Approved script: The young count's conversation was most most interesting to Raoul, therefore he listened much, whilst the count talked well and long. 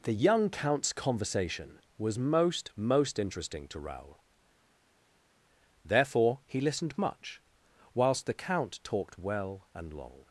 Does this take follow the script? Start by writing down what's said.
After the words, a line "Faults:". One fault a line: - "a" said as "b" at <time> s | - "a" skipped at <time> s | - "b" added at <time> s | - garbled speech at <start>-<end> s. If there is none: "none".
The young count's conversation was most most interesting to Raoul, therefore he listened much, whilst the count talked well and long.
Faults:
none